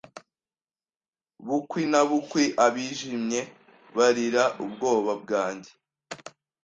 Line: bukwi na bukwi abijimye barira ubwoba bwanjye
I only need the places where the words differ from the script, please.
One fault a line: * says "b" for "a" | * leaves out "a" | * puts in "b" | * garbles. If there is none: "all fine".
all fine